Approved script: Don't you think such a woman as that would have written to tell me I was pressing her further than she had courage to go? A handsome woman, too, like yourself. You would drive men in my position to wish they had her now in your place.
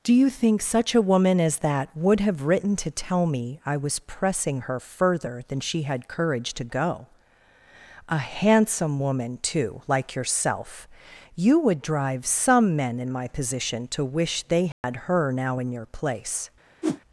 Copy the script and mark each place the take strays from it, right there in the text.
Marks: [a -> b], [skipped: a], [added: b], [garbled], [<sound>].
[Don't -> Do] you think such a woman as that would have written to tell me I was pressing her further than she had courage to go? A handsome woman, too, like yourself. You would drive [added: some] men in my position to wish they had [dropout] her now in your place. [whoosh]